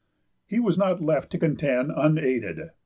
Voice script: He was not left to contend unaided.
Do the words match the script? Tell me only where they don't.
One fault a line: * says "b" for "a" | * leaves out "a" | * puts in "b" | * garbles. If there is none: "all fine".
all fine